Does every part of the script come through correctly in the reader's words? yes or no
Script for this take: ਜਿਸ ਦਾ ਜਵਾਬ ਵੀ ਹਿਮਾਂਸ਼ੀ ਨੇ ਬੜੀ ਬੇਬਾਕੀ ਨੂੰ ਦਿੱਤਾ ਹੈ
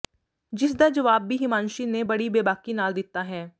no